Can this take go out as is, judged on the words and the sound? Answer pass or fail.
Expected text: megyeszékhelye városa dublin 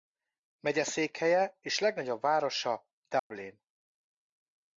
fail